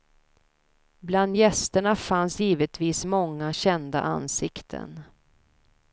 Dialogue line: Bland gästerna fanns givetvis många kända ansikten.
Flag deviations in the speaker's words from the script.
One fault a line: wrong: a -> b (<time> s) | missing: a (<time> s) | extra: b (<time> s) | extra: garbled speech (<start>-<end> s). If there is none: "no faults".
no faults